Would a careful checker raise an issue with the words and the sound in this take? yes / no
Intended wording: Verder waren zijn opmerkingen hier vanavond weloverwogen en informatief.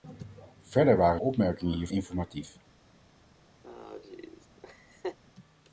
yes